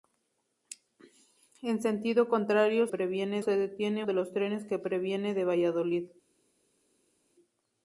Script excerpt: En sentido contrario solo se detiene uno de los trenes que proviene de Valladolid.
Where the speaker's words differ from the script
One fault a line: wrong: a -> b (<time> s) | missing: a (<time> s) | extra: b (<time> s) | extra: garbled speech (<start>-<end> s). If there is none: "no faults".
wrong: solo -> proviene (2.9 s)
missing: uno (4.0 s)